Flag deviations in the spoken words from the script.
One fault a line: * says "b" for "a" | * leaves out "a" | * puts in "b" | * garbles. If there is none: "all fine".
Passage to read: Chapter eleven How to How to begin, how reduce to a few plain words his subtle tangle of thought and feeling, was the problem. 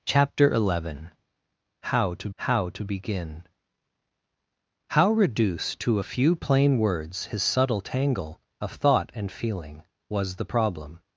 all fine